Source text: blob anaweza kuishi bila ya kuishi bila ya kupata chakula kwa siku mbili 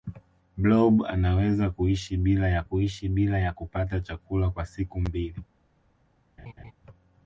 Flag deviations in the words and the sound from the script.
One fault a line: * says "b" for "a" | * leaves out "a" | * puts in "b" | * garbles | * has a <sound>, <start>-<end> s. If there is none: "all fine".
* has a laugh, 6.4-6.7 s